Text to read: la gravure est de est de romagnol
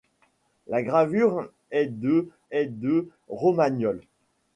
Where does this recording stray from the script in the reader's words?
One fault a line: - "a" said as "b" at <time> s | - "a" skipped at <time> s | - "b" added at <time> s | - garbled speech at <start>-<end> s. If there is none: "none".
none